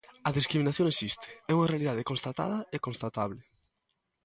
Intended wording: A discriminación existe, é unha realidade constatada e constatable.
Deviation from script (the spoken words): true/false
false